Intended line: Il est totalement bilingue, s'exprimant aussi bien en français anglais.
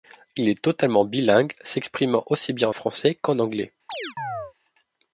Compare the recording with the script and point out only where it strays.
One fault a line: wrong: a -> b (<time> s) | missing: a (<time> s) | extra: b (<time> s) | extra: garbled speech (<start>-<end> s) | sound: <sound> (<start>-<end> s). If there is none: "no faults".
extra: qu'en (3.2 s)
sound: chirp (3.9-4.5 s)